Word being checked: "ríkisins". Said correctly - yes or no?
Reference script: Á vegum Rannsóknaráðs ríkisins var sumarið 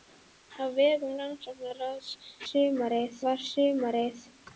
no